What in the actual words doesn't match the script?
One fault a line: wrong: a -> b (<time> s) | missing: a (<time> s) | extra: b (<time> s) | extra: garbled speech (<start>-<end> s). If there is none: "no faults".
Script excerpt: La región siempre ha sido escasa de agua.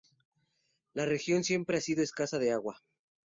no faults